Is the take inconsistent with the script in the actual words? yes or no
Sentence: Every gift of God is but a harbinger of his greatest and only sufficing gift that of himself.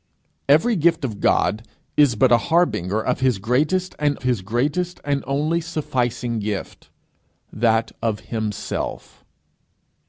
yes